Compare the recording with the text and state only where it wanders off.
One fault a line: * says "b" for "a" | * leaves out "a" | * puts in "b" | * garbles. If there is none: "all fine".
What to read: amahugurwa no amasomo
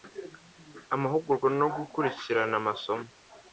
* puts in "gukurikirana"